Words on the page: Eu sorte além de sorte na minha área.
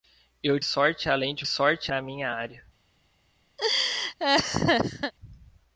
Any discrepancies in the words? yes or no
no